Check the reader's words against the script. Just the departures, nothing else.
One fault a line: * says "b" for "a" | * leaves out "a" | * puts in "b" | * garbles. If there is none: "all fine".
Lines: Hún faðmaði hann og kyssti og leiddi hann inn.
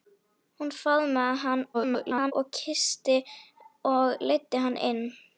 * garbles